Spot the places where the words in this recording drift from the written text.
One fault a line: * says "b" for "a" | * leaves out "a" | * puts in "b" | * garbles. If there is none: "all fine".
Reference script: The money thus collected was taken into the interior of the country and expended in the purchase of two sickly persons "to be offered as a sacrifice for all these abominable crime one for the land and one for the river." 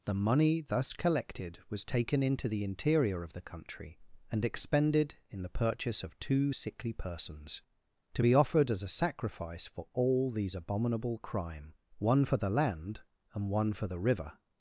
all fine